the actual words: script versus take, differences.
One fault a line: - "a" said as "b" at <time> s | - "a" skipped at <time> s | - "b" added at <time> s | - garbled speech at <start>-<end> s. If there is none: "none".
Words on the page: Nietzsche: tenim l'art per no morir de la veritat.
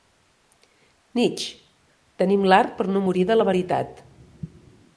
none